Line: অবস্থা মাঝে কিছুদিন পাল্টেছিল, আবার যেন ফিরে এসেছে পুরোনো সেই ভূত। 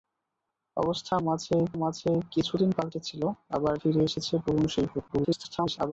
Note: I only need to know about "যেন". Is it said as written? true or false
false